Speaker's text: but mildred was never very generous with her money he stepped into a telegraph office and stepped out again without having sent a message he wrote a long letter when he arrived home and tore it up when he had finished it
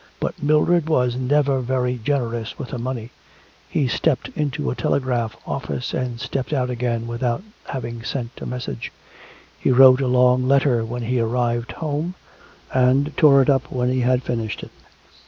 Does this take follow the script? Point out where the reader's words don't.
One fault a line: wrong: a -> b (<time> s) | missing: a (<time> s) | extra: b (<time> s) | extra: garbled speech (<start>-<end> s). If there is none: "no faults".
no faults